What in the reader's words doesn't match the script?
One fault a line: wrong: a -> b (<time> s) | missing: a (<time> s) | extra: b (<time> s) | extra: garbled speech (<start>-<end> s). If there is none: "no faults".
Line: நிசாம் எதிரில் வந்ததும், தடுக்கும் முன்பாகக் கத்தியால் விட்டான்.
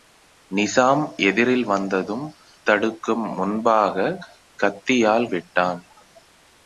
no faults